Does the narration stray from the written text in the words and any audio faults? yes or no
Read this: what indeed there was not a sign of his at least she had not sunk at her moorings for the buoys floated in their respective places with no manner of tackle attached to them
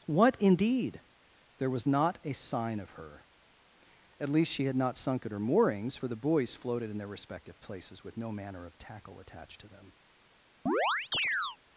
yes